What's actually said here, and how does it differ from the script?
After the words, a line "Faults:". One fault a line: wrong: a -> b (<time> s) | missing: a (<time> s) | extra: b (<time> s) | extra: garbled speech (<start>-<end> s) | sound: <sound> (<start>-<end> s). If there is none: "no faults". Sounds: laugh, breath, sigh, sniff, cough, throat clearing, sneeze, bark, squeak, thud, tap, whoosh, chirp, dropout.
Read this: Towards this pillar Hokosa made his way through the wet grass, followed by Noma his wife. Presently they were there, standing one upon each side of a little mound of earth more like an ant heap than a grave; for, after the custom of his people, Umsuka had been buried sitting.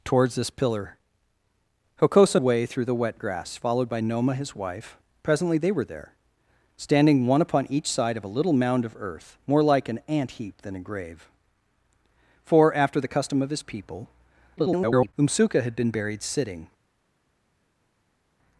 Towards this pillar Hokosa way through the wet grass, followed by Noma his wife. Presently they were there, standing one upon each side of a little mound of earth more like an ant heap than a grave; for, after the custom of his people, [garbled] Umsuka had been buried sitting.
Faults:
missing: made his (2.4 s)
extra: garbled speech (14.6-15.1 s)